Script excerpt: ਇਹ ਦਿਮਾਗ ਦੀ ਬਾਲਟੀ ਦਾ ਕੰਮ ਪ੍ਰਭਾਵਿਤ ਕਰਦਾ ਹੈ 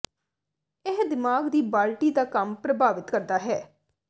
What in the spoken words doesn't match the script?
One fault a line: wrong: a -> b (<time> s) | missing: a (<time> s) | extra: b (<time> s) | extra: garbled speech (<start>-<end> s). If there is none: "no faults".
no faults